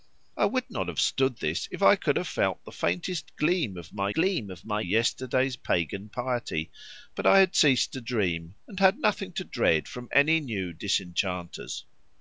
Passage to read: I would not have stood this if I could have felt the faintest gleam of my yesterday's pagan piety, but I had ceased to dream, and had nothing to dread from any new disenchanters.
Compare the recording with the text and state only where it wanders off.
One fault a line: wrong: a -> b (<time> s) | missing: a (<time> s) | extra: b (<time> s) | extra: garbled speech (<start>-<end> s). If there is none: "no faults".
extra: gleam of my (4.1 s)